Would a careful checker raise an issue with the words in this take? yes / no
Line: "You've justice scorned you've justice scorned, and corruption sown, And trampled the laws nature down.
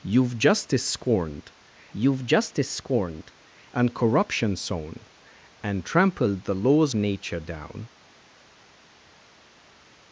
no